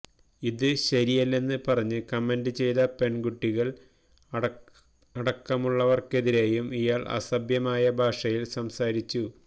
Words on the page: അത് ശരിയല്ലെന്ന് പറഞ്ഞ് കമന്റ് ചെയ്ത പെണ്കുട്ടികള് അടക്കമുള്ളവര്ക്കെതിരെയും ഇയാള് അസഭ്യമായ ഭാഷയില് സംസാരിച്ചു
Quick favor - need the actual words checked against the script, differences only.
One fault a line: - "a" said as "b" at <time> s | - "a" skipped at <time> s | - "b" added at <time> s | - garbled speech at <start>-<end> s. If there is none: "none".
- "അത്" said as "ഇത്" at 0.4 s